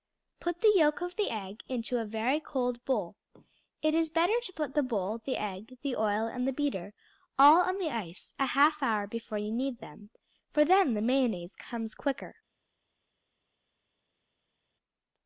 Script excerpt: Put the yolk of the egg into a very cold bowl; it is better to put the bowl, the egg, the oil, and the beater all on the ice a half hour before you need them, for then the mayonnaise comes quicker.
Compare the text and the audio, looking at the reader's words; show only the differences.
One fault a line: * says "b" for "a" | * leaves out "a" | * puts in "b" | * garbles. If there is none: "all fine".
all fine